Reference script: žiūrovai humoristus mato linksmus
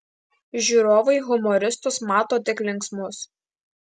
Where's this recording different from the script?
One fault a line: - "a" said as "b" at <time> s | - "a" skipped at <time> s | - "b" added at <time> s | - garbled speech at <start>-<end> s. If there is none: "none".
- "tik" added at 2.5 s